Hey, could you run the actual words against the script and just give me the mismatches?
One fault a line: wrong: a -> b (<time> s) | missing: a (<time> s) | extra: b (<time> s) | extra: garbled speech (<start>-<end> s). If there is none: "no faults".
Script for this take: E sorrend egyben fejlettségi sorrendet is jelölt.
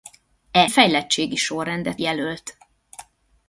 missing: sorrend egyben (0.7 s)
missing: is (2.0 s)